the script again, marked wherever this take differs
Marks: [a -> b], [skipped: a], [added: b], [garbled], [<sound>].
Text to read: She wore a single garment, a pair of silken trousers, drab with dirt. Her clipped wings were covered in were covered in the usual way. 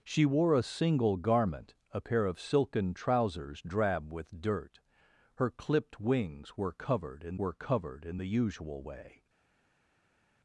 She wore a single garment, a pair of silken trousers, drab with dirt. Her clipped wings were covered in were covered in the usual way.